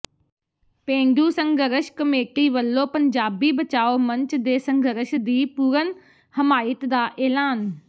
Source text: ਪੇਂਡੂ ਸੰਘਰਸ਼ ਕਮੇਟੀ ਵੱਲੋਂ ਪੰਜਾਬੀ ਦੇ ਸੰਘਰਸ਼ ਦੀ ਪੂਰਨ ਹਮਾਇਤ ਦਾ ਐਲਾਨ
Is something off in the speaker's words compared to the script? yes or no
yes